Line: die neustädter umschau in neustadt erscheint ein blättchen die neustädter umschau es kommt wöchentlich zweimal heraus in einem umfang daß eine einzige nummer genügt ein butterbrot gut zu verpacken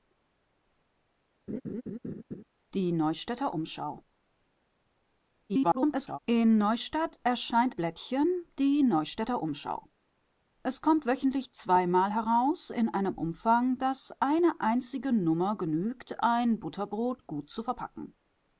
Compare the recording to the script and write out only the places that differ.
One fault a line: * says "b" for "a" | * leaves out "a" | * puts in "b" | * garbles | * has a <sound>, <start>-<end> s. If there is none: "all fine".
* has a laugh, 1.5-2.4 s
* garbles
* leaves out "ein"